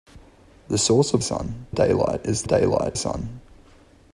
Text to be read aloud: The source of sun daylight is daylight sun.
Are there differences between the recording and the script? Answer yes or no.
no